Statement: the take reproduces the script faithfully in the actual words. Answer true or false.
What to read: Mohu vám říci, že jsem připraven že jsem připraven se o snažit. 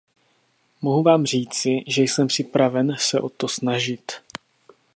false